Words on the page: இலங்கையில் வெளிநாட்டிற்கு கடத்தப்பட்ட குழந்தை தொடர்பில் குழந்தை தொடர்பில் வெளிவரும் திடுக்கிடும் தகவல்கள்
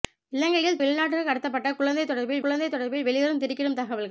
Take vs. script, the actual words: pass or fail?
pass